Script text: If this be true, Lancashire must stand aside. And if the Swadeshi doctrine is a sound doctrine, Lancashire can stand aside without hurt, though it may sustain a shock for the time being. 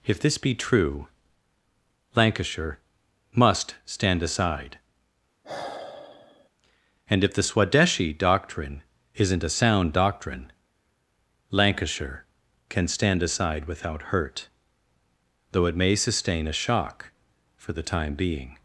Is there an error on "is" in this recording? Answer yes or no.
yes